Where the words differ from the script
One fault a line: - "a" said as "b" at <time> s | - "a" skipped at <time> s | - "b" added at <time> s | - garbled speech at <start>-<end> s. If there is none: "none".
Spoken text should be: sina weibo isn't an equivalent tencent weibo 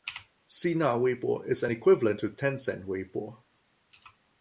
- "isn't" said as "is" at 1.4 s
- "to" added at 2.2 s